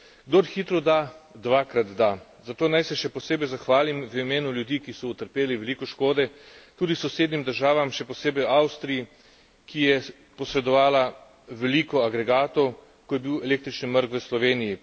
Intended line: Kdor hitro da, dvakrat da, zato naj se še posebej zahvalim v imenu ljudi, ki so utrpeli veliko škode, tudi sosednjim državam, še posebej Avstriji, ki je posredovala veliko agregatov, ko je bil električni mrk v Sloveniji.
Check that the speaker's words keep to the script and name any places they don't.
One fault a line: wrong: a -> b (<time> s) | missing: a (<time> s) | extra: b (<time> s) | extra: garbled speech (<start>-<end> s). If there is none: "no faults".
no faults